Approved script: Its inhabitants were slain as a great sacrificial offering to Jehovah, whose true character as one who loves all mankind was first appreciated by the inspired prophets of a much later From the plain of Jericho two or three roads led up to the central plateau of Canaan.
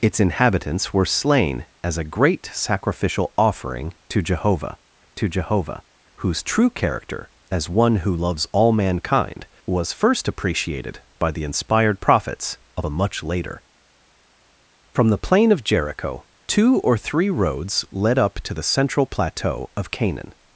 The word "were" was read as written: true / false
true